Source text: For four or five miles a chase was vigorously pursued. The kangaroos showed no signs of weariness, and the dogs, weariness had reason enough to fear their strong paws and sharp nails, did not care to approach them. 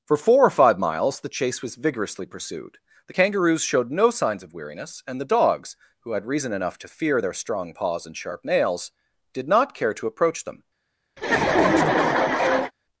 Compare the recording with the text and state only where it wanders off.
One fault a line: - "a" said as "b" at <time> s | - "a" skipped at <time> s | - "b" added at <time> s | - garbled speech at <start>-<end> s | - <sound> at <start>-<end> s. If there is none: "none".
- "a" said as "the" at 1.2 s
- "weariness" said as "who" at 6.0 s
- laugh at 11.2-12.7 s